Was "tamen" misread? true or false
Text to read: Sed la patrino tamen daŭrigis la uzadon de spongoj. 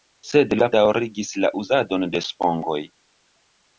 true